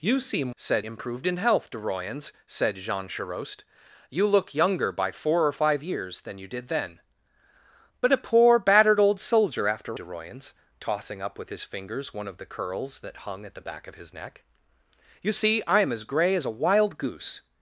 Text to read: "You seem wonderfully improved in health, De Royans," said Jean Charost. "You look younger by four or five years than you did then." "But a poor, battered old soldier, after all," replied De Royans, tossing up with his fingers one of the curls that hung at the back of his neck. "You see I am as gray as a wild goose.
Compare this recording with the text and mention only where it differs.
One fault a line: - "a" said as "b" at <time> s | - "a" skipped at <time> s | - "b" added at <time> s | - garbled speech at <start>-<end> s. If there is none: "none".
- "wonderfully" said as "said" at 0.5 s
- "all replied" skipped at 10.0 s